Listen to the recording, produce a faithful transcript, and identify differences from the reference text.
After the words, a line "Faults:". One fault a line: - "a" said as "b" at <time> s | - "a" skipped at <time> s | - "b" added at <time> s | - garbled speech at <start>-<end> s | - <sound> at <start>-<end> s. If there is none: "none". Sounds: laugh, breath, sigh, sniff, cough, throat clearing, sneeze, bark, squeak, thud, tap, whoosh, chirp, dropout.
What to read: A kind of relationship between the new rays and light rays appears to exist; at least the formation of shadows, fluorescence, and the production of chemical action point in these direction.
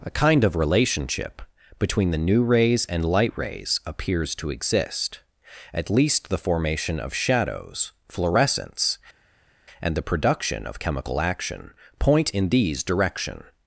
A kind of relationship between the new rays and light rays appears to exist; at least the formation of shadows, fluorescence, and the production of chemical action point in these direction.
Faults:
none